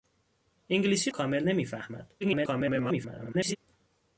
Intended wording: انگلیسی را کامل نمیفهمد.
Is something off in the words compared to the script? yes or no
yes